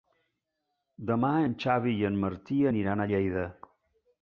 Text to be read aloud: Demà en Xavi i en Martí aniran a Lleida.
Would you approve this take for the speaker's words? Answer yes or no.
yes